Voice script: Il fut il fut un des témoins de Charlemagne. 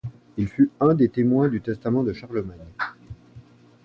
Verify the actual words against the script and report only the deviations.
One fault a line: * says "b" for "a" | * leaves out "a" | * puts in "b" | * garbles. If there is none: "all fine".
* leaves out "il fut"
* puts in "du testament"